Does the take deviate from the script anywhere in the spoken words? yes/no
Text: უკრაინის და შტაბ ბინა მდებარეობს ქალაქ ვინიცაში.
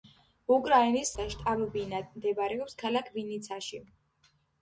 no